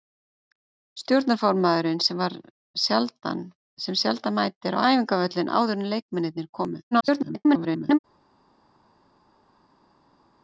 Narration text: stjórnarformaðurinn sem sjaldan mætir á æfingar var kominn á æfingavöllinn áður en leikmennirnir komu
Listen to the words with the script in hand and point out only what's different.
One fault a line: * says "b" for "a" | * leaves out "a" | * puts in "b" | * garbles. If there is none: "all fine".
* leaves out "æfingar var kominn"
* garbles